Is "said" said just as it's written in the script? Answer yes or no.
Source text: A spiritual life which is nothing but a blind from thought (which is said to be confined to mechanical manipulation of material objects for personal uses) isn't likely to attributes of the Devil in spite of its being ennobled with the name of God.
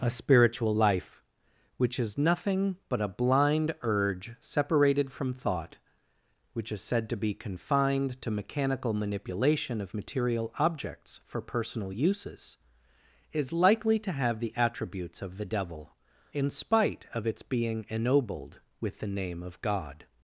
yes